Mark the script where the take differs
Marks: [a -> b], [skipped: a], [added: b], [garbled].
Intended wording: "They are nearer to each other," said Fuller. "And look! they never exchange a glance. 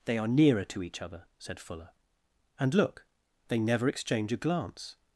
"They are nearer to each other," said Fuller. "And look! they never exchange a glance.